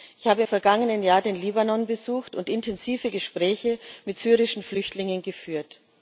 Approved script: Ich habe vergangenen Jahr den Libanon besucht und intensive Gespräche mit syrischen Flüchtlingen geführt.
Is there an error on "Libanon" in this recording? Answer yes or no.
no